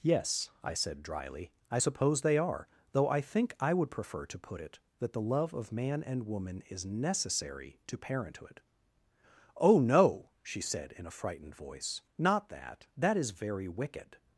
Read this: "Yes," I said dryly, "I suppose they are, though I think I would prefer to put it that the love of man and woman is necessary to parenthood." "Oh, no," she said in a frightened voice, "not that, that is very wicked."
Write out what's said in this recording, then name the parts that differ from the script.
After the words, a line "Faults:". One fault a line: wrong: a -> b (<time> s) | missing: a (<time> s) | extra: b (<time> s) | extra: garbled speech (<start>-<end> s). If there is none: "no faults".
"Yes," I said dryly, "I suppose they are, though I think I would prefer to put it that the love of man and woman is necessary to parenthood." "Oh, no," she said in a frightened voice, "not that, that is very wicked."
Faults:
no faults